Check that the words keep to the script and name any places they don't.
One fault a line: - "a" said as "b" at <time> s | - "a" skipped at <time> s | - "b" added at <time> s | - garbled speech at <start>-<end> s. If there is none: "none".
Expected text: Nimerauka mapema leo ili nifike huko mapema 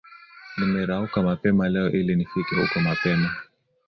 none